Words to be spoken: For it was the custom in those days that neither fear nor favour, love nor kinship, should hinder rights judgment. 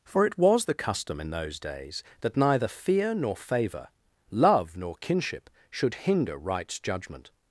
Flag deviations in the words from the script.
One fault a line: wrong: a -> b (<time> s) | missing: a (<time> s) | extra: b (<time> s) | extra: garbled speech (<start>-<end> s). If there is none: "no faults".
no faults